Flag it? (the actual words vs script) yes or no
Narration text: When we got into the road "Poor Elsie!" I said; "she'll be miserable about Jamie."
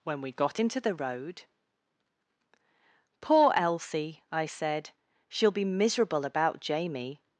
no